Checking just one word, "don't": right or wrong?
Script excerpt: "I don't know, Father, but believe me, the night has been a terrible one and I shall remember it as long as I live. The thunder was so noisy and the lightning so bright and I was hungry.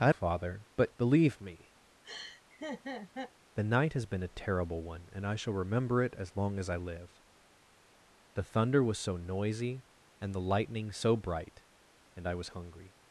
wrong